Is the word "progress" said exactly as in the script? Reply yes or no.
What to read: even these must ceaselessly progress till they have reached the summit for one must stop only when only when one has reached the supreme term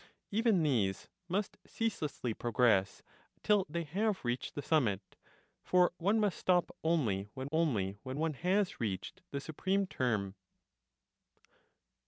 yes